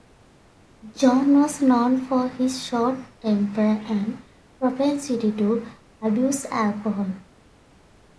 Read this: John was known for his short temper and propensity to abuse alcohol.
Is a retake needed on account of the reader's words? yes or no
no